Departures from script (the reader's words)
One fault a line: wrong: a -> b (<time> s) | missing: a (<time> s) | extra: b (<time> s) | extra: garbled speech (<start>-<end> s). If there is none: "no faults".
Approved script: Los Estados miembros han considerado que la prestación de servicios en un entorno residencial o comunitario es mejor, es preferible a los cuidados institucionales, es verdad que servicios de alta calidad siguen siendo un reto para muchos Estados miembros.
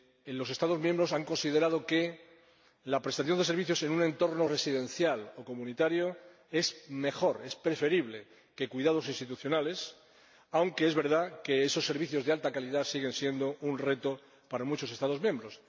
extra: aunque (10.5 s)
extra: esos (11.6 s)